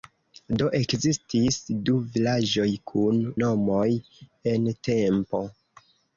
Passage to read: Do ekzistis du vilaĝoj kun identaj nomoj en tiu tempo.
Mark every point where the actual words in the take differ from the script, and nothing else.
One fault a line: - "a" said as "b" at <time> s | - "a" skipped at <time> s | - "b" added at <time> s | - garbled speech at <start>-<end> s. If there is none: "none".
- "identaj" skipped at 3.2 s
- "tiu" skipped at 4.6 s